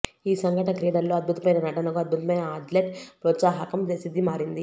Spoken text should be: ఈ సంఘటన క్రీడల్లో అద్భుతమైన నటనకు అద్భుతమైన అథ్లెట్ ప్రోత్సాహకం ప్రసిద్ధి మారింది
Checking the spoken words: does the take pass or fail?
pass